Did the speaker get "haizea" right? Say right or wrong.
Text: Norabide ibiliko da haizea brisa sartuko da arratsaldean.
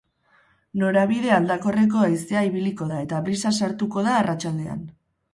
wrong